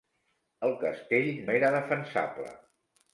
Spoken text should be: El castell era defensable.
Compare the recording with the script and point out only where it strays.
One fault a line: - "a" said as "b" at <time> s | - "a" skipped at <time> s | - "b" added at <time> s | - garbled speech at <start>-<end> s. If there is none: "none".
none